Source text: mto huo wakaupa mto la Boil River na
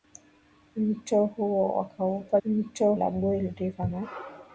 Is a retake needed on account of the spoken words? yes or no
no